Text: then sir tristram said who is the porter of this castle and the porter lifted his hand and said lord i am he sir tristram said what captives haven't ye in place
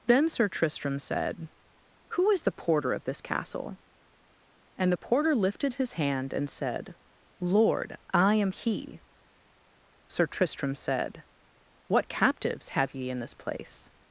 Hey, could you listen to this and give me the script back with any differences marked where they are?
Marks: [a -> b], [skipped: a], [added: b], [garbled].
then sir tristram said who is the porter of this castle and the porter lifted his hand and said lord i am he sir tristram said what captives [haven't -> have] ye in [added: this] place